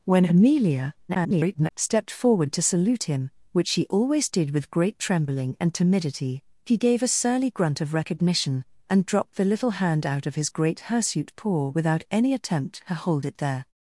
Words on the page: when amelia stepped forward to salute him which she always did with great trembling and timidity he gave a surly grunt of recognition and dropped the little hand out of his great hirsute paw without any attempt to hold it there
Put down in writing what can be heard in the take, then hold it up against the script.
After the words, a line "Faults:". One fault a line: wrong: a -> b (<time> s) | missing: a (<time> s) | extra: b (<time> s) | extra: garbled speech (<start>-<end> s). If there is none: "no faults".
when amelia [garbled] stepped forward to salute him which she always did with great trembling and timidity he gave a surly grunt of recognition and dropped the little hand out of his great hirsute paw without any attempt to hold it there
Faults:
extra: garbled speech (1.1-1.7 s)